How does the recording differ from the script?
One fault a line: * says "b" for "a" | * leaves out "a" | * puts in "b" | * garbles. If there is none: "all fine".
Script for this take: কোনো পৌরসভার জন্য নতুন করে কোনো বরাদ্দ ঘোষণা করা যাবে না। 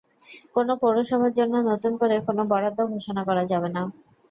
all fine